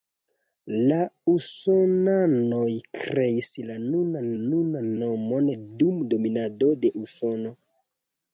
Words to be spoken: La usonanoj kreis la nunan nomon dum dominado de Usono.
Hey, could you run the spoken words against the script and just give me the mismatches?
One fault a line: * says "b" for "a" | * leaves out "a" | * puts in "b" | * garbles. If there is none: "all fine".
* puts in "nunan"